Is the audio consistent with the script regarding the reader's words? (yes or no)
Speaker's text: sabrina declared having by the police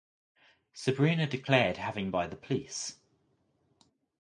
yes